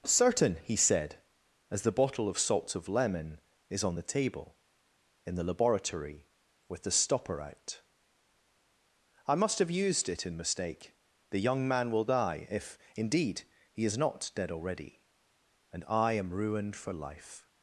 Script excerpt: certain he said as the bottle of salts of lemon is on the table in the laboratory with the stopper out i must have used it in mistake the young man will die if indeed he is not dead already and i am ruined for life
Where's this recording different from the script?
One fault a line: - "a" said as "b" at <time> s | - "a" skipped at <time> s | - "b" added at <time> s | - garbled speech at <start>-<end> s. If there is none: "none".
none